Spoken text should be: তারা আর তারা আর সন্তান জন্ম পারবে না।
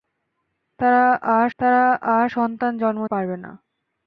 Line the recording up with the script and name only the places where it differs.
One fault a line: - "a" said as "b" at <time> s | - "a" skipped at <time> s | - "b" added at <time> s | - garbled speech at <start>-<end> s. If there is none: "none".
none